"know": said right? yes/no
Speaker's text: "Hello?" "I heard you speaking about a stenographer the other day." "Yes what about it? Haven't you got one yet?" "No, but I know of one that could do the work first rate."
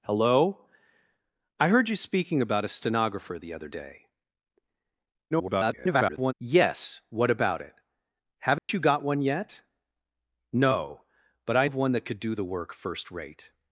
no